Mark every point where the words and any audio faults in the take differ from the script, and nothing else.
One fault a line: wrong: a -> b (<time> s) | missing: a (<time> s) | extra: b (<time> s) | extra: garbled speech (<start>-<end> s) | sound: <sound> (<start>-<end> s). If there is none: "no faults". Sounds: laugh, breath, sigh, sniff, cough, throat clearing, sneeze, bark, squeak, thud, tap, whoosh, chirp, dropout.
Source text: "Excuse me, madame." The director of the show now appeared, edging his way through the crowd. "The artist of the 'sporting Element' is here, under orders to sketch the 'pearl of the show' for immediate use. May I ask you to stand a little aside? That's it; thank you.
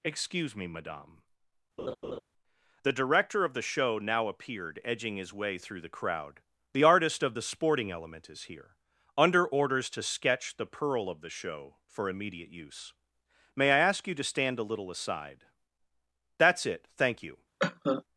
sound: laugh (1.8-2.2 s)
sound: cough (17.6-18.0 s)